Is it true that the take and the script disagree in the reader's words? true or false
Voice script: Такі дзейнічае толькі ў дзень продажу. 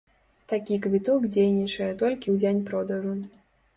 true